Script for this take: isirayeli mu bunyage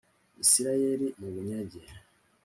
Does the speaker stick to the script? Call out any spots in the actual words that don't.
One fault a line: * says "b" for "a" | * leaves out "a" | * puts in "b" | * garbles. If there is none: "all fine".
all fine